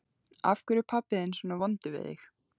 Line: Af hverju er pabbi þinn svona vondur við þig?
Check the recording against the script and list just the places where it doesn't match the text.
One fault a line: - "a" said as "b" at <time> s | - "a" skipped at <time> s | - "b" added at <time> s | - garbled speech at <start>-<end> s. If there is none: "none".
none